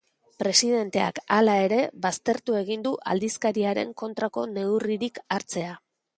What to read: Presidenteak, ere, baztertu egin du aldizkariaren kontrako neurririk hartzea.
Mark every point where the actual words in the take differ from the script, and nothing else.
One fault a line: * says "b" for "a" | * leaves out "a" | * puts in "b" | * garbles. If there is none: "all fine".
* puts in "hala"